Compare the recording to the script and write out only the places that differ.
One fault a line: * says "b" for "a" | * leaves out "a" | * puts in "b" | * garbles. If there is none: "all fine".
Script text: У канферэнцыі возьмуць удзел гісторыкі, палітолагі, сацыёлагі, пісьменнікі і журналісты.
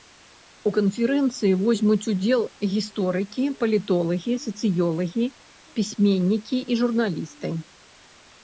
all fine